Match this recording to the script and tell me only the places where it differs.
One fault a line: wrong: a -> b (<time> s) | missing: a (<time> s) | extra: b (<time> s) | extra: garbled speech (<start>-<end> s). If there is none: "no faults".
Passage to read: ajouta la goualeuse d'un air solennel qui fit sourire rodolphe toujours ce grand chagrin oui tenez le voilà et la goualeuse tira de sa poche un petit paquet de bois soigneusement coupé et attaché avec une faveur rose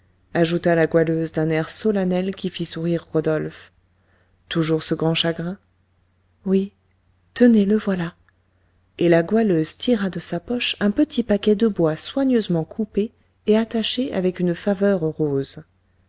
no faults